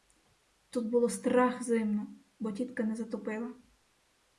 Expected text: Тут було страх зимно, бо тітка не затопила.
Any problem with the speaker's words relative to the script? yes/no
no